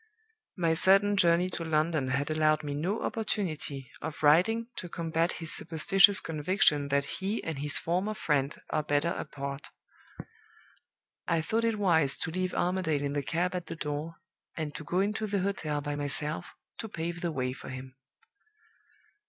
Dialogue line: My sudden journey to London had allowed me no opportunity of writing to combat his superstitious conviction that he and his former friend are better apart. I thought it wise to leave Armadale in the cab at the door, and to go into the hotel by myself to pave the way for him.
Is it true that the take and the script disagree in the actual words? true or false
false